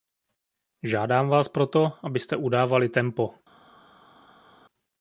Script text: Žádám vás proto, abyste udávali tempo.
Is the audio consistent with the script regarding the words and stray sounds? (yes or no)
yes